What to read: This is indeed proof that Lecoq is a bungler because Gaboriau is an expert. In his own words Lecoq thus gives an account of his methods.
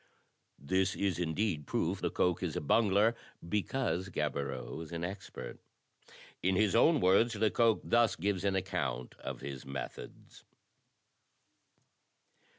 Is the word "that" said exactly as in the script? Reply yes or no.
no